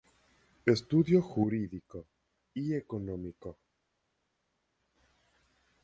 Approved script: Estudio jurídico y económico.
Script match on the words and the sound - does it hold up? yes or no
yes